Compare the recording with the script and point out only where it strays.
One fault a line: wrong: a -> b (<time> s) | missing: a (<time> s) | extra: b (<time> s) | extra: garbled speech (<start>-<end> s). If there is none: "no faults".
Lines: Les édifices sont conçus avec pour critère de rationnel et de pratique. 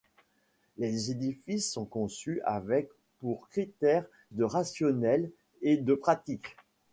no faults